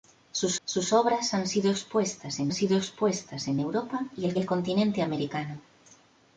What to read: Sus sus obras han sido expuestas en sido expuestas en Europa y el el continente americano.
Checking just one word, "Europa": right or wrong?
right